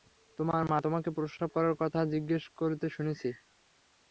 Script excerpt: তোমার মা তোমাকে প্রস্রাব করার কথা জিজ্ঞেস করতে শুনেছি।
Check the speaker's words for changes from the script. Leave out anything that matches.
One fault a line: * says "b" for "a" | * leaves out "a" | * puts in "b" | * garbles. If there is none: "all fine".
all fine